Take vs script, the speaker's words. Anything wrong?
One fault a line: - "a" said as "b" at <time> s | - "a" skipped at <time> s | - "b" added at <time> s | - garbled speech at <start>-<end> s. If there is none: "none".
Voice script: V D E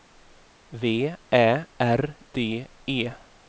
- "Ä R" added at 1.3 s